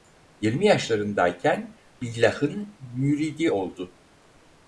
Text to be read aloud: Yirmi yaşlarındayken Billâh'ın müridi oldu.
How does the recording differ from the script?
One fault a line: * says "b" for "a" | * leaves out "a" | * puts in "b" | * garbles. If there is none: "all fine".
all fine